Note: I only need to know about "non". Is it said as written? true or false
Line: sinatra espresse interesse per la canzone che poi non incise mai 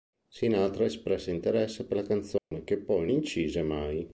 false